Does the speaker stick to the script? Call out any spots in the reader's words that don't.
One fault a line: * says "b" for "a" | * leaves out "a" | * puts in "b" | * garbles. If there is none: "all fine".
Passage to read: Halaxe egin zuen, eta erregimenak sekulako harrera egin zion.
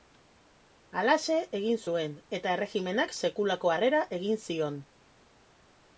all fine